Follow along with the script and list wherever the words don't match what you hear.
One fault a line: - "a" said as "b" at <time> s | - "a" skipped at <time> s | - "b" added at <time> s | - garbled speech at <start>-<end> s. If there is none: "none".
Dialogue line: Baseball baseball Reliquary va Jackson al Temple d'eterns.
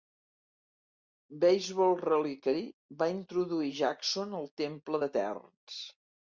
- "baseball" skipped at 1.9 s
- "introduir" added at 3.2 s